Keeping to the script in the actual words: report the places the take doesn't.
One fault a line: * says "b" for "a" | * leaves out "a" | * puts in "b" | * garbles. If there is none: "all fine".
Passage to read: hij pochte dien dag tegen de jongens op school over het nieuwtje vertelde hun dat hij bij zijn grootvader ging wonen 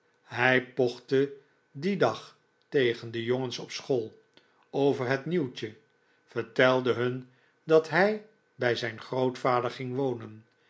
all fine